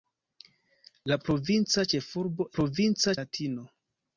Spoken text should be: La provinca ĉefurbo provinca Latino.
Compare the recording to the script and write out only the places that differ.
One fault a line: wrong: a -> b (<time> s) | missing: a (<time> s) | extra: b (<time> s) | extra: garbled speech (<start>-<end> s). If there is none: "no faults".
no faults